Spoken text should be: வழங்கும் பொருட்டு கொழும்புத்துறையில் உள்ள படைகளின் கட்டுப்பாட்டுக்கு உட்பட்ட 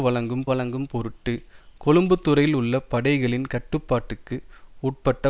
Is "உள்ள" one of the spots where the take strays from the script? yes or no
no